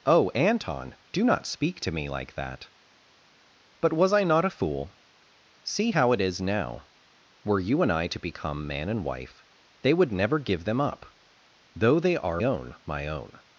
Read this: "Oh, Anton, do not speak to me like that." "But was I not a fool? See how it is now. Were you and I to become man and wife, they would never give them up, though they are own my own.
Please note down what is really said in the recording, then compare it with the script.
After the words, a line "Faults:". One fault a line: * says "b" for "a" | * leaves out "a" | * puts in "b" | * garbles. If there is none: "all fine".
"Oh, Anton, do not speak to me like that." "But was I not a fool? See how it is now. Were you and I to become man and wife, they would never give them up, though they are own my own.
Faults:
all fine